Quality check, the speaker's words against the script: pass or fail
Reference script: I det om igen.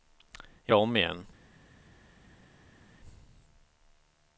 pass